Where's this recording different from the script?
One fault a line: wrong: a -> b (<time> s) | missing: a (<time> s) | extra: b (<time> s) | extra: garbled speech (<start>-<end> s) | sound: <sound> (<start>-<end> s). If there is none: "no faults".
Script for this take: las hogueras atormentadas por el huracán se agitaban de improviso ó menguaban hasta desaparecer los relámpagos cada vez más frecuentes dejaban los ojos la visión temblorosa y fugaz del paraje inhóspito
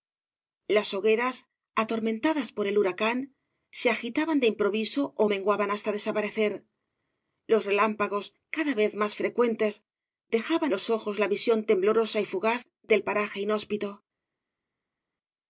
no faults